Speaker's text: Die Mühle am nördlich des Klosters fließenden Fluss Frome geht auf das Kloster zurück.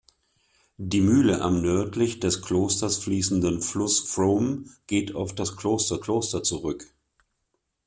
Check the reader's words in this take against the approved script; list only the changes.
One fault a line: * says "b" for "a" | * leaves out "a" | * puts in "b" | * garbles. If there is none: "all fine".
* puts in "Kloster"